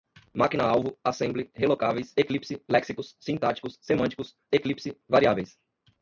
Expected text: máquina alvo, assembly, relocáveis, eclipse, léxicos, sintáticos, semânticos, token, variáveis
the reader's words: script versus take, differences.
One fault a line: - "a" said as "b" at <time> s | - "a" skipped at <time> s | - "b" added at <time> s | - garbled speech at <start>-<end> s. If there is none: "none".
- "token" said as "eclipse" at 4.5 s